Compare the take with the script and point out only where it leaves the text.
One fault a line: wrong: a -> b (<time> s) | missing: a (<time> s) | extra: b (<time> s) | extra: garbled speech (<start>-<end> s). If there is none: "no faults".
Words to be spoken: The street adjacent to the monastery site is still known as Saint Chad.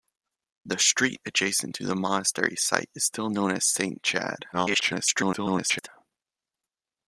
extra: garbled speech (4.5-5.9 s)